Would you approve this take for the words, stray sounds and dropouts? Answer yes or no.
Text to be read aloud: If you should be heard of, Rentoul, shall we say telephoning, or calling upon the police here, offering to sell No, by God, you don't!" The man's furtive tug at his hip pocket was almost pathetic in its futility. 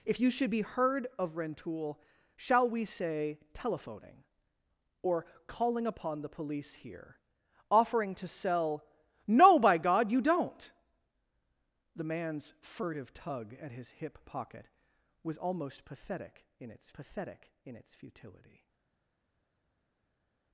no